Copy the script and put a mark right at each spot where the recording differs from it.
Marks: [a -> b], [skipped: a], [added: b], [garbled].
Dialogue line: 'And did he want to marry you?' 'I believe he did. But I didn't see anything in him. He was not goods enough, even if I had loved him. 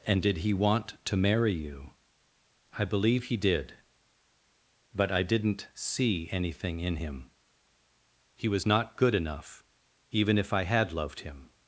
'And did he want to marry you?' 'I believe he did. But I didn't see anything in him. He was not [goods -> good] enough, even if I had loved him.